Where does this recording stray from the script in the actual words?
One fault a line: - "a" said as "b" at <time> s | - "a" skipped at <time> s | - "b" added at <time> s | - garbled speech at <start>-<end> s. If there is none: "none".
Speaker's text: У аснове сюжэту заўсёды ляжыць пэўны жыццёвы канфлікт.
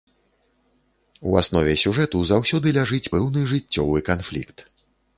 none